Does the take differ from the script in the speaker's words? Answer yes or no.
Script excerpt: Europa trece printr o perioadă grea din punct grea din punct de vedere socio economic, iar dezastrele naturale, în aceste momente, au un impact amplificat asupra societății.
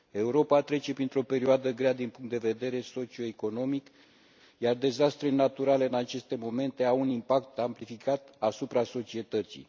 yes